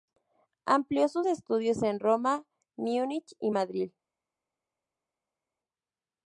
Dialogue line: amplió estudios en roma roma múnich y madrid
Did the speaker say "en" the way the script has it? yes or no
yes